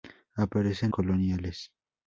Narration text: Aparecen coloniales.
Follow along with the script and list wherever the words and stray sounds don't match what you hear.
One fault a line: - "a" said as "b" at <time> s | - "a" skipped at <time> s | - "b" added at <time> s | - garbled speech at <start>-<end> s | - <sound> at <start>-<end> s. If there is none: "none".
none